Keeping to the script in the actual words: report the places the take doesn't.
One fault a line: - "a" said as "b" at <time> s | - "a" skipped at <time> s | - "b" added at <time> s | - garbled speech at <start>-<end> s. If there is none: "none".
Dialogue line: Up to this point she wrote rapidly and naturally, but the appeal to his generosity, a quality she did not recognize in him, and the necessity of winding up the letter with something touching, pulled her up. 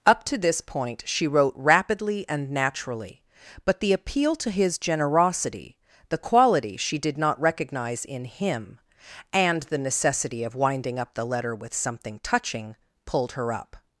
- "a" said as "the" at 6.1 s